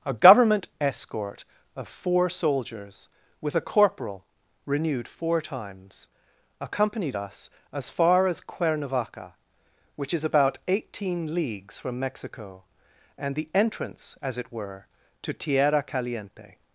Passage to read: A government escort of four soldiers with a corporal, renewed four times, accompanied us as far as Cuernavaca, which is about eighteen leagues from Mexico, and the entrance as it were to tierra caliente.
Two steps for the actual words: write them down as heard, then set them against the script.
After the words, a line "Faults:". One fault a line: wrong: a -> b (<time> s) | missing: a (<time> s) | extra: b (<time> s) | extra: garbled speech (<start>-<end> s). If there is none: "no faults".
A government escort of four soldiers with a corporal, renewed four times, accompanied us as far as Cuernavaca, which is about eighteen leagues from Mexico, and the entrance as it were to tierra caliente.
Faults:
no faults